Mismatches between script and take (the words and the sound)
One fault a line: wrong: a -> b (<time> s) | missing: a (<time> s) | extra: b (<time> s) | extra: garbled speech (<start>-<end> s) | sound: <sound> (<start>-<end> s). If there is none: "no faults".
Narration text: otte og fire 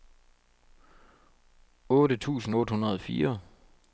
extra: tusind otte hundrede (2.2 s)